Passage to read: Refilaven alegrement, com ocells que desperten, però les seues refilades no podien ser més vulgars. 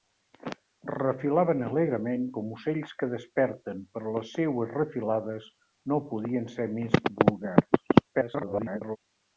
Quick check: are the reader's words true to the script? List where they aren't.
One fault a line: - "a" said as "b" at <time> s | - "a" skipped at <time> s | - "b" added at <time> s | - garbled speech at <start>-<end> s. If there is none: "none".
- garbled speech at 8.1-9.0 s